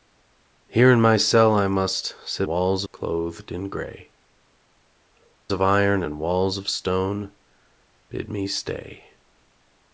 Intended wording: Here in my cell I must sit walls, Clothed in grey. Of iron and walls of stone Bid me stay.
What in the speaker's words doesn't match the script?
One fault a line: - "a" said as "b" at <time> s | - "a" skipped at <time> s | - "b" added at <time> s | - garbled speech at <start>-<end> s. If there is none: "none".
none